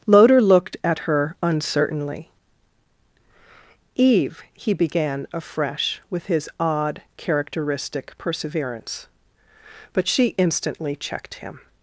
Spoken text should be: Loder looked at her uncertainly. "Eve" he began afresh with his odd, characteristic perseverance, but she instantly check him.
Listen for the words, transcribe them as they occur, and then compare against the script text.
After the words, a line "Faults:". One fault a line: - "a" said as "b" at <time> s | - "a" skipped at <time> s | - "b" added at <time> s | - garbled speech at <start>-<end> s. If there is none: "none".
Loder looked at her uncertainly. "Eve" he began afresh with his odd, characteristic perseverance, but she instantly checked him.
Faults:
- "check" said as "checked" at 10.9 s